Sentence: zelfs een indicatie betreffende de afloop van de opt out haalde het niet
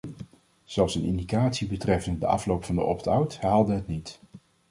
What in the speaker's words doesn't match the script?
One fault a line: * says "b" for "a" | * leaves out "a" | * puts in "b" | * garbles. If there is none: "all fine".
all fine